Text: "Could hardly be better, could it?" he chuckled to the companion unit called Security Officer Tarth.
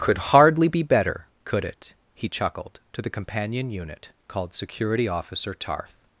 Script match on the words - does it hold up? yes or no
yes